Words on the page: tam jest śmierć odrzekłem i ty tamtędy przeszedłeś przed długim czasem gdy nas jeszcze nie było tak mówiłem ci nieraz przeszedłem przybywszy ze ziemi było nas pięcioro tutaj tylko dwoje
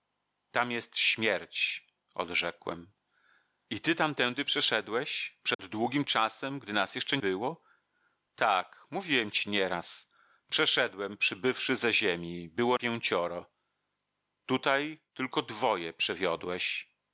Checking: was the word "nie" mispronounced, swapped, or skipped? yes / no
yes